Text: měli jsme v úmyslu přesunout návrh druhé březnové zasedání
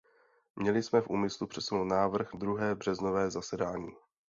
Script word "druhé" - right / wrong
right